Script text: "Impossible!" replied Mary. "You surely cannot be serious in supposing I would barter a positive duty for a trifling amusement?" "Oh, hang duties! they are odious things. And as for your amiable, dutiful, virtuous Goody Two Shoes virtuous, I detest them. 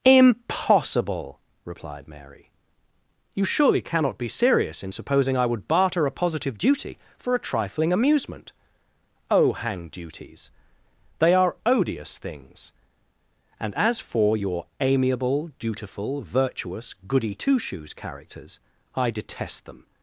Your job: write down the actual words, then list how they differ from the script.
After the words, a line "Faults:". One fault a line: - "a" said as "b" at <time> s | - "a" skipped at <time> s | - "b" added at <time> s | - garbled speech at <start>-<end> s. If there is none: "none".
"Impossible!" replied Mary. "You surely cannot be serious in supposing I would barter a positive duty for a trifling amusement?" "Oh, hang duties! they are odious things. And as for your amiable, dutiful, virtuous Goody Two Shoes characters, I detest them.
Faults:
- "virtuous" said as "characters" at 17.9 s